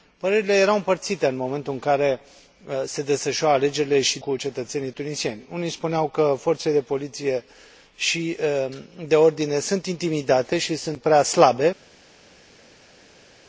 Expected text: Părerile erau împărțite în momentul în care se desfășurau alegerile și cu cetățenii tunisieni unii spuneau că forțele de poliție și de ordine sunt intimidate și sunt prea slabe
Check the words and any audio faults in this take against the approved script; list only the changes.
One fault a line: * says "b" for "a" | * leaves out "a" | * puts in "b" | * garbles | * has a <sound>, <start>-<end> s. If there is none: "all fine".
all fine